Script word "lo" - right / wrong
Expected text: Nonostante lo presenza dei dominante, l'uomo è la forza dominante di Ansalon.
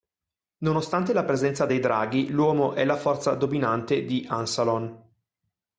wrong